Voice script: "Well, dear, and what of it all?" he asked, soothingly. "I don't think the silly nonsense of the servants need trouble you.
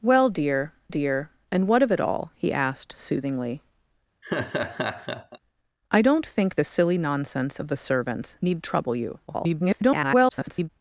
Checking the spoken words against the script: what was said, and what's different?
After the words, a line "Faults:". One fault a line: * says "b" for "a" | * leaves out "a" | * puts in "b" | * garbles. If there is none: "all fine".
"Well, dear dear, and what of it all?" he asked, soothingly. "I don't think the silly nonsense of the servants need trouble you. [garbled]
Faults:
* puts in "dear"
* garbles